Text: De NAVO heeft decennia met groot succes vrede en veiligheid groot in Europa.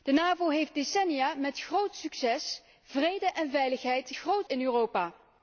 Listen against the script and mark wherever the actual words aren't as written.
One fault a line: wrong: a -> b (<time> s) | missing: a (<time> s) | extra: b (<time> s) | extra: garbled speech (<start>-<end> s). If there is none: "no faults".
no faults